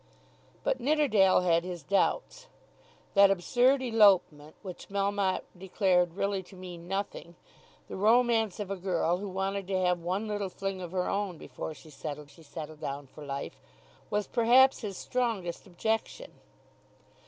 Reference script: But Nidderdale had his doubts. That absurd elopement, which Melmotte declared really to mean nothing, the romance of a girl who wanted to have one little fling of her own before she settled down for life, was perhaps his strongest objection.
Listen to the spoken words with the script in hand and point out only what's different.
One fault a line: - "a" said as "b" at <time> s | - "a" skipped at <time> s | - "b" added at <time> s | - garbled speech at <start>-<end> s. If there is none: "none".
- "she settled" added at 12.3 s